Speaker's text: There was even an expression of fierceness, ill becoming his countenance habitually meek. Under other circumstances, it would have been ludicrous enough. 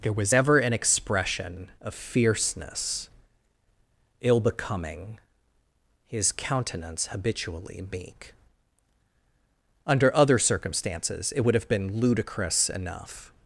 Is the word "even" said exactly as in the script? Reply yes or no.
no